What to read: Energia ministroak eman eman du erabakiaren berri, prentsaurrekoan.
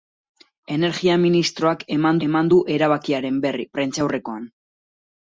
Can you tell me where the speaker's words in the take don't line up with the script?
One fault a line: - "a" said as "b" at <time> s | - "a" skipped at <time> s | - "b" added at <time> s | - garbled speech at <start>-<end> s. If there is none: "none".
none